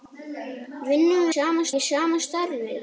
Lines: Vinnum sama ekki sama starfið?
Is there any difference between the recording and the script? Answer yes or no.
no